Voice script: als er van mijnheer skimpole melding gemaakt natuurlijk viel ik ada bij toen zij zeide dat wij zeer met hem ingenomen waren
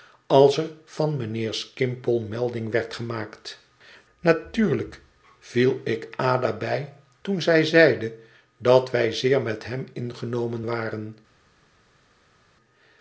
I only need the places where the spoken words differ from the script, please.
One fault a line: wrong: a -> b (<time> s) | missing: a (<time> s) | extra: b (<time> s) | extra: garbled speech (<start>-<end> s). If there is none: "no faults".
extra: werd (2.7 s)